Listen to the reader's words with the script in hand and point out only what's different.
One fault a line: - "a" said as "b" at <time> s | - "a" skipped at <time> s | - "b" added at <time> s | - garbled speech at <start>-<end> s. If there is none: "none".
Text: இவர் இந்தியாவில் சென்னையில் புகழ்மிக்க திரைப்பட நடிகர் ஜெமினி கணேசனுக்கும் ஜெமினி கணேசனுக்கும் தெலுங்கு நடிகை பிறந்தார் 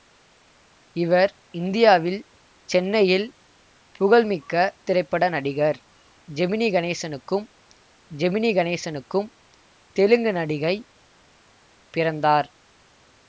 none